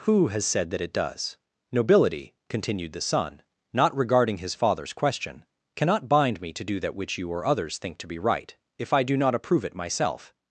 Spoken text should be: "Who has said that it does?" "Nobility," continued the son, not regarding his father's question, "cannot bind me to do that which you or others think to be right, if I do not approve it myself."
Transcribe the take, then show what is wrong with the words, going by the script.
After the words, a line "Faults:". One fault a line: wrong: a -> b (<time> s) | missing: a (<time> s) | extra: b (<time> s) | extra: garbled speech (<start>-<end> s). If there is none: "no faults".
"Who has said that it does?" "Nobility," continued the son, not regarding his father's question, "cannot bind me to do that which you or others think to be right, if I do not approve it myself."
Faults:
no faults